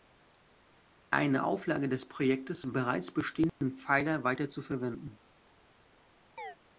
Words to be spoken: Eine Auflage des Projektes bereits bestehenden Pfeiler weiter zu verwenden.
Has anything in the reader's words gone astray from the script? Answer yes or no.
no